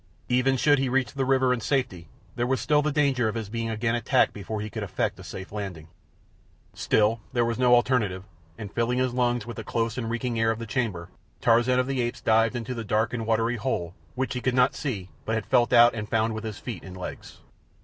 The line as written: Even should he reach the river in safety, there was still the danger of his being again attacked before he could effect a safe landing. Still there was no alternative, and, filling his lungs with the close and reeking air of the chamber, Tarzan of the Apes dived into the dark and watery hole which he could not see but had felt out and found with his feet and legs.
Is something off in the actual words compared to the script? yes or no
no